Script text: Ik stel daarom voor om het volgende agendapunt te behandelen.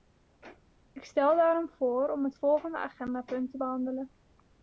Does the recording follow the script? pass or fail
pass